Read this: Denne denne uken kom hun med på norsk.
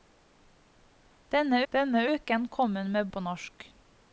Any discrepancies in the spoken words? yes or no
no